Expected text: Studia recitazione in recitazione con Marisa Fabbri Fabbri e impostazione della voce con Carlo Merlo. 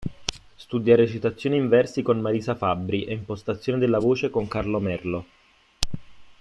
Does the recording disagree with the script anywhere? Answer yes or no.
yes